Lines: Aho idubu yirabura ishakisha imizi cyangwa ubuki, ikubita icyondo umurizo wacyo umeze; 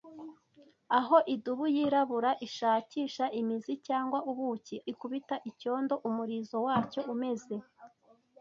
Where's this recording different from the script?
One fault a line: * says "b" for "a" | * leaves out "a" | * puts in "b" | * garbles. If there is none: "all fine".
all fine